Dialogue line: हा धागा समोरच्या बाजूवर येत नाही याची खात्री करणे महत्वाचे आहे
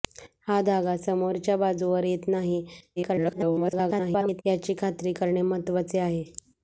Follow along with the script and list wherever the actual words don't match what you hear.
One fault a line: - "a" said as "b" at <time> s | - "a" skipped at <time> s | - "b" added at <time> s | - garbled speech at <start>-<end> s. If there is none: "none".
- garbled speech at 3.0-4.4 s